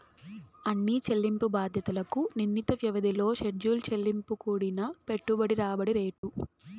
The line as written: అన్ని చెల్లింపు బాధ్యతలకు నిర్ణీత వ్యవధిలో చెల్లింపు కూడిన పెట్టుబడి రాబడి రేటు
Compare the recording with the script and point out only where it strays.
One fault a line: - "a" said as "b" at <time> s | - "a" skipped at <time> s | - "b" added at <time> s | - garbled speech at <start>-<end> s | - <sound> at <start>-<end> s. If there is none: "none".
- "షెడ్యూల్" added at 3.4 s
- dropout at 6.2-6.2 s